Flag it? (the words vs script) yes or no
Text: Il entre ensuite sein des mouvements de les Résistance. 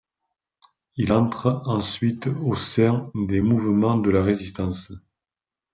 yes